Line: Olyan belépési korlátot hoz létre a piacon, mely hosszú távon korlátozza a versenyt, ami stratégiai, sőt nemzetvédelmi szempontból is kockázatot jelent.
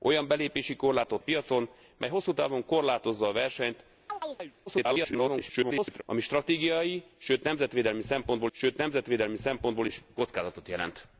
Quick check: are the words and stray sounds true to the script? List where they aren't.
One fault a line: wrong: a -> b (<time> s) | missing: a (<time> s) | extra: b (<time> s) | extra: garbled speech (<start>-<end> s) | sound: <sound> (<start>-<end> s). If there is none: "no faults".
missing: hoz létre (1.2 s)
sound: chirp (4.1-4.5 s)
extra: garbled speech (4.7-6.0 s)
extra: sőt nemzetvédelmi szempontból (8.5 s)